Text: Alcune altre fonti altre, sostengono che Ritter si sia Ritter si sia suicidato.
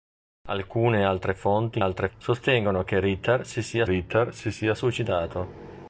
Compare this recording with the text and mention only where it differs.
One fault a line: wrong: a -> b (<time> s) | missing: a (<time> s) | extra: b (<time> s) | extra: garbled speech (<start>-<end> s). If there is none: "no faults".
no faults